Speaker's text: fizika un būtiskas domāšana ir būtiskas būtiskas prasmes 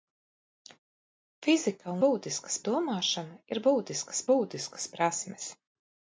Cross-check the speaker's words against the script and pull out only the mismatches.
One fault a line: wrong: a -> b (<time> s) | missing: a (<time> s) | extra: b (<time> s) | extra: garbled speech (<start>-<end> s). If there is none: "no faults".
no faults